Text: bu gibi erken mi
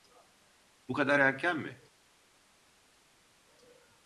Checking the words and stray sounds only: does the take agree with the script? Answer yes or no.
no